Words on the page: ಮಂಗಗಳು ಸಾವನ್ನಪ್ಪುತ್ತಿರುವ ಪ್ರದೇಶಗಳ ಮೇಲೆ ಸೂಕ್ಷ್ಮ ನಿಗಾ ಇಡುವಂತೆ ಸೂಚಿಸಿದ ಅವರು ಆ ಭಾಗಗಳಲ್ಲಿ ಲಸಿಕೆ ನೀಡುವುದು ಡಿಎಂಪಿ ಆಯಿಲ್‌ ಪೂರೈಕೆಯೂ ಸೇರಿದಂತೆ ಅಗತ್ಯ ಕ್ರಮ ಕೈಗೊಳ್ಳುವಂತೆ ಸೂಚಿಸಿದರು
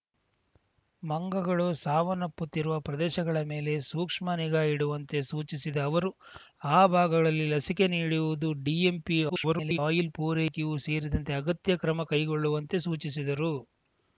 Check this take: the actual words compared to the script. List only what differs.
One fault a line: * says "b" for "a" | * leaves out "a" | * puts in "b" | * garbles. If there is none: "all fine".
* garbles